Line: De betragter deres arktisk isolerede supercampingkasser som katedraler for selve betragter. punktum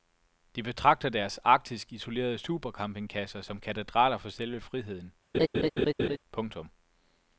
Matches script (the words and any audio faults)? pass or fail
fail